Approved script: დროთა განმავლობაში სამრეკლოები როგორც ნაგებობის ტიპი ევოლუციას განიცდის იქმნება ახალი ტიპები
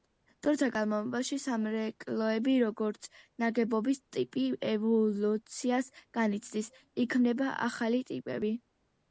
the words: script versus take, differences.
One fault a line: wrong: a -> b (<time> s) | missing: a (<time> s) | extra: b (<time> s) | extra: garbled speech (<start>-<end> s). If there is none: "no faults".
no faults